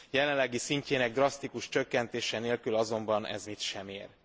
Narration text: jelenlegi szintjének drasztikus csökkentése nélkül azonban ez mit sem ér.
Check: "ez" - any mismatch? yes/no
no